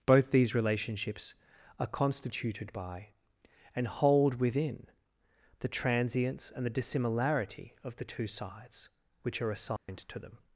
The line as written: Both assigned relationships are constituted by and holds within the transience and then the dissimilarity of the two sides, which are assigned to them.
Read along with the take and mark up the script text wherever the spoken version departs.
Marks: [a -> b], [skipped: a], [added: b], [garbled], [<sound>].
Both [assigned -> these] relationships are constituted by and [holds -> hold] within the transience and [skipped: then] the dissimilarity of the two sides, which are assigned [dropout] to them.